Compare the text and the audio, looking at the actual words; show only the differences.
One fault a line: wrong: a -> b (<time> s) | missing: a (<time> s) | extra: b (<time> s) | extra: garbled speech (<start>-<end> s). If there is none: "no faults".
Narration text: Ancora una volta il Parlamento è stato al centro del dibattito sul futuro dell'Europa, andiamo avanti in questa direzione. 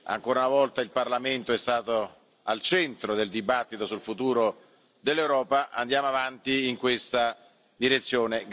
no faults